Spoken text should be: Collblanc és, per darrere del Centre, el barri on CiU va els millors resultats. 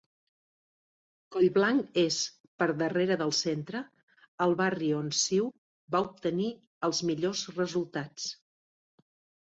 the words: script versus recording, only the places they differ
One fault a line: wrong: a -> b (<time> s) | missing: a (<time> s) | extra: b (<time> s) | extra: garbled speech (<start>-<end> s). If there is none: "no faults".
extra: obtenir (6.1 s)